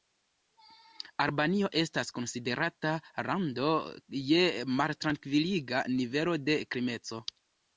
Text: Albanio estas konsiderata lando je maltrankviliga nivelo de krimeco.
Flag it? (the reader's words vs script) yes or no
no